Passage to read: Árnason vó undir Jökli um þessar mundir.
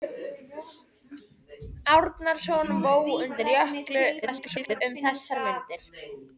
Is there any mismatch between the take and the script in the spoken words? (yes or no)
yes